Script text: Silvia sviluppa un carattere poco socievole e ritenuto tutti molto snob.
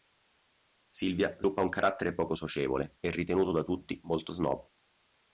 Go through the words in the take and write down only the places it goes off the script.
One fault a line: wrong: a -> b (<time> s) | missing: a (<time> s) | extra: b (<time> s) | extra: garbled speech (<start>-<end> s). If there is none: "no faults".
extra: da (3.5 s)